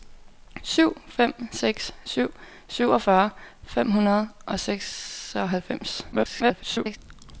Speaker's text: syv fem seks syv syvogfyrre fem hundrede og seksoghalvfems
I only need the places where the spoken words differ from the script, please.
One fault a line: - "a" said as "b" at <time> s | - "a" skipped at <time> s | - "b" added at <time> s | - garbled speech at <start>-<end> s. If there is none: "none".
- garbled speech at 6.1-7.0 s